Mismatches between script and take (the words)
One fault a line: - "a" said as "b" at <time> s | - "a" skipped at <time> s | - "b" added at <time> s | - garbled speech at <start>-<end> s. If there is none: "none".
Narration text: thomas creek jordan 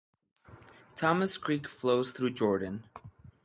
- "flows through" added at 1.7 s